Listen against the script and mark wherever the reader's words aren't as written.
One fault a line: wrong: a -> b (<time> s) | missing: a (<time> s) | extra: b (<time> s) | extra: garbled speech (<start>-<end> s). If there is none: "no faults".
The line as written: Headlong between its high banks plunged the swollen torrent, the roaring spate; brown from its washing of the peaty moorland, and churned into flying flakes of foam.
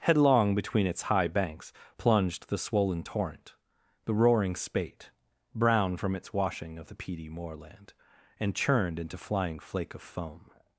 wrong: flakes -> flake (9.6 s)